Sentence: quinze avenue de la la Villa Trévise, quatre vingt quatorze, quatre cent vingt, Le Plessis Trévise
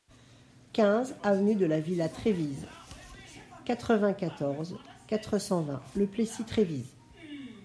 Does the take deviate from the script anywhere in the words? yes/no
yes